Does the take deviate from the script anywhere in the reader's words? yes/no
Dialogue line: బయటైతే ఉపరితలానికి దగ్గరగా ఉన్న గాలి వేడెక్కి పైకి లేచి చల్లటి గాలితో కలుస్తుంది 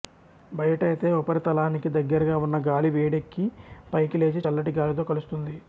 no